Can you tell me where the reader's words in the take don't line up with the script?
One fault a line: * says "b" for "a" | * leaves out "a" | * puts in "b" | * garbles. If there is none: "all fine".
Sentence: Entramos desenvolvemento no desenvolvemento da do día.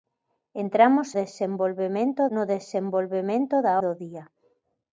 all fine